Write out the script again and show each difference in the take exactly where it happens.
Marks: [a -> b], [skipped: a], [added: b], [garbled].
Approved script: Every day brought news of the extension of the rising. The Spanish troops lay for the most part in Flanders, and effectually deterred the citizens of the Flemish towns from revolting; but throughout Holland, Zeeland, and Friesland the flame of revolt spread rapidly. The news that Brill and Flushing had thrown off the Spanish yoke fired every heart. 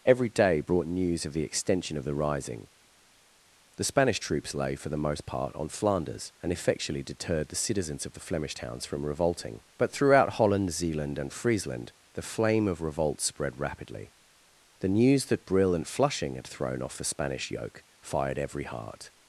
Every day brought news of the extension of the rising. The Spanish troops lay for the most part [in -> on] Flanders, and effectually deterred the citizens of the Flemish towns from revolting; but throughout Holland, Zeeland, and Friesland the flame of revolt spread rapidly. The news that Brill and Flushing had thrown off the Spanish yoke fired every heart.